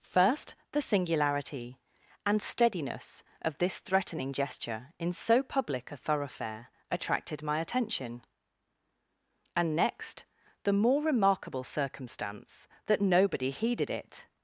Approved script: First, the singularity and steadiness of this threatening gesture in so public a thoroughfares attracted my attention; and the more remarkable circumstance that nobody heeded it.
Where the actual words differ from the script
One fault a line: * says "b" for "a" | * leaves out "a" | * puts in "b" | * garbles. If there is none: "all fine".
* says "thoroughfare" for "thoroughfares"
* puts in "next"